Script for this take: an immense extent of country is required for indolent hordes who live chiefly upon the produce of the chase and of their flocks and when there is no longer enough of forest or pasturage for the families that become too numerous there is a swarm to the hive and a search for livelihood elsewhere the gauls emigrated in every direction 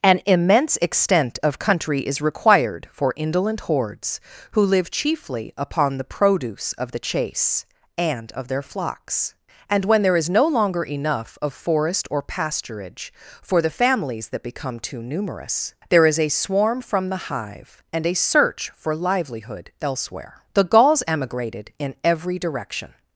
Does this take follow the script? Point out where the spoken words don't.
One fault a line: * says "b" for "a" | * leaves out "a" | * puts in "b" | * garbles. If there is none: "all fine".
* says "from" for "to"